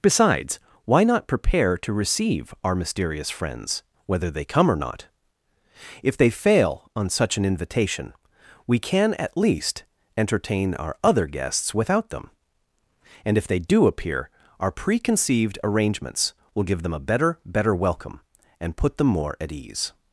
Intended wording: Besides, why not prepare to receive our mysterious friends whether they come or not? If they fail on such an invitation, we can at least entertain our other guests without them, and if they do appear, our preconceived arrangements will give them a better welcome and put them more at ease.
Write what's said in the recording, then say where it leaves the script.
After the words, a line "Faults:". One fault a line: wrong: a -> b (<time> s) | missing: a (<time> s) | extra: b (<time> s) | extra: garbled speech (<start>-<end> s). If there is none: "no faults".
Besides, why not prepare to receive our mysterious friends whether they come or not? If they fail on such an invitation, we can at least entertain our other guests without them, and if they do appear, our preconceived arrangements will give them a better better welcome and put them more at ease.
Faults:
extra: better (17.4 s)